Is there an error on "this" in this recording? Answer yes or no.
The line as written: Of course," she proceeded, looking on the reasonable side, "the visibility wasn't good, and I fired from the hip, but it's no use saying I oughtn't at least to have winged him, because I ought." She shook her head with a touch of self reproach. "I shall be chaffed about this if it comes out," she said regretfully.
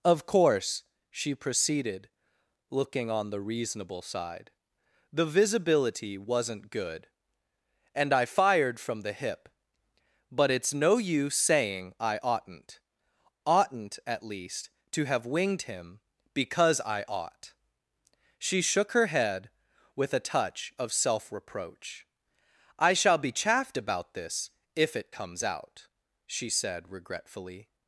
no